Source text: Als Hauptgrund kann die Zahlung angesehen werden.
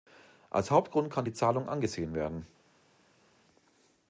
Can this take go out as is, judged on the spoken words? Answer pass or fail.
pass